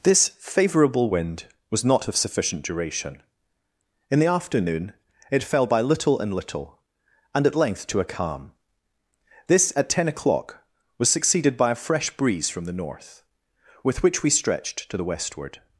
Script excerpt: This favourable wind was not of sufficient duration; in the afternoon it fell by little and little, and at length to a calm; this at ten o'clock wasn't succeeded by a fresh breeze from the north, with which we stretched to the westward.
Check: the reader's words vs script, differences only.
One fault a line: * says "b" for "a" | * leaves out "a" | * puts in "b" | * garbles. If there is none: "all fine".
* says "was" for "wasn't"